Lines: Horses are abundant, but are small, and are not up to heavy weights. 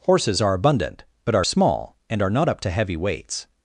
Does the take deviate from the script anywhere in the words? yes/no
no